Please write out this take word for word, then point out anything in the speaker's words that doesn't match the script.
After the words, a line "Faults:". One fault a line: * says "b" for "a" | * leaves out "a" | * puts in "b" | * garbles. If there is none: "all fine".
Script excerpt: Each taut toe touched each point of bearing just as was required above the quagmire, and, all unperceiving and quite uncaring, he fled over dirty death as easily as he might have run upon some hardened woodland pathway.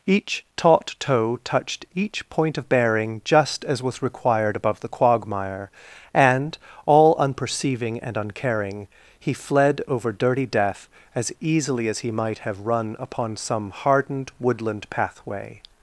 Each taut toe touched each point of bearing just as was required above the quagmire, and, all unperceiving and uncaring, he fled over dirty death as easily as he might have run upon some hardened woodland pathway.
Faults:
* leaves out "quite"